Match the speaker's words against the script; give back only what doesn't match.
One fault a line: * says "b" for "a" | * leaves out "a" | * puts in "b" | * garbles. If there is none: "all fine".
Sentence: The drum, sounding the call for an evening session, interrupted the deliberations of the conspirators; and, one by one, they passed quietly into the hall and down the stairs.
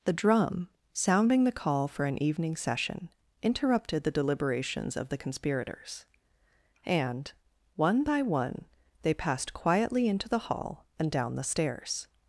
all fine